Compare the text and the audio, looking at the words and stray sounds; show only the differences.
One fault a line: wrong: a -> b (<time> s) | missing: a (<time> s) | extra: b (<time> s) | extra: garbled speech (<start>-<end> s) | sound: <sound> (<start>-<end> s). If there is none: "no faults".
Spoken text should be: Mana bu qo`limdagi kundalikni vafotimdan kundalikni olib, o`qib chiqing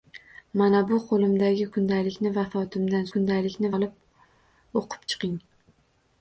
no faults